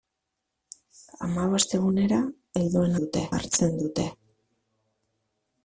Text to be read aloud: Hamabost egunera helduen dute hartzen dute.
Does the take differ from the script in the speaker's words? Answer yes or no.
no